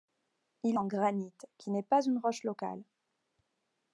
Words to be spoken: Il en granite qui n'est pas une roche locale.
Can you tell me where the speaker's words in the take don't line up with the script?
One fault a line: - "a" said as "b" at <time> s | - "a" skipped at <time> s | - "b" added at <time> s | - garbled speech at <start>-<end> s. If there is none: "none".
none